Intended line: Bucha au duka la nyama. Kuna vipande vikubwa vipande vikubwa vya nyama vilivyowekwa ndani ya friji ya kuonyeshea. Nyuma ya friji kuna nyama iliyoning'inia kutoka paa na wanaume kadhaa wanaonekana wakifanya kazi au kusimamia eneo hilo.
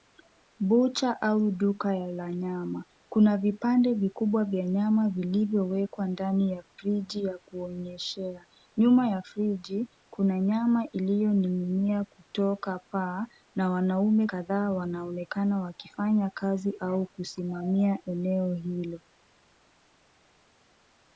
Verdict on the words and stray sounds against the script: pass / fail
fail